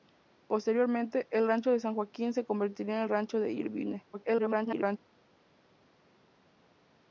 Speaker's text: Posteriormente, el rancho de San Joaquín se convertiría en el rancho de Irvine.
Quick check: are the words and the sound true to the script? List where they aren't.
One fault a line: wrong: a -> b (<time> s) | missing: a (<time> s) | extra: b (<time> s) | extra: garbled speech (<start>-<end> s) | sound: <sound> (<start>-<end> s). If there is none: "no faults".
extra: garbled speech (4.1-5.0 s)